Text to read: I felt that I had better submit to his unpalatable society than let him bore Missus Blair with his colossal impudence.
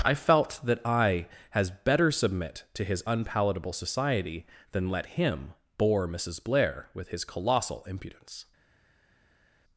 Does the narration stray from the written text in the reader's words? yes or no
yes